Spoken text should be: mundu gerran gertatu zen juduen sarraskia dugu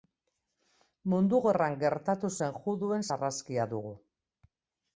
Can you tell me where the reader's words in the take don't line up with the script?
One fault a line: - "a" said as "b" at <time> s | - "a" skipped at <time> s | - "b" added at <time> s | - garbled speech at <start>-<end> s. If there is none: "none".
none